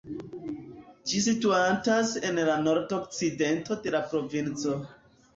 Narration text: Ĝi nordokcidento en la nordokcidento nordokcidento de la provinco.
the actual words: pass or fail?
fail